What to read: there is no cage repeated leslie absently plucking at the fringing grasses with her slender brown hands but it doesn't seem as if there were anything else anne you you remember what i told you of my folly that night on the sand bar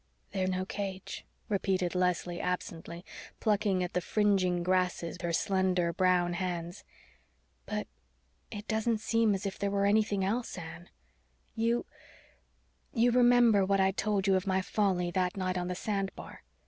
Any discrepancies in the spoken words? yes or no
yes